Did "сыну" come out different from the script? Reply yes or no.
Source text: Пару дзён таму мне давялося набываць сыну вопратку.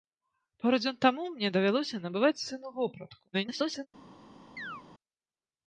no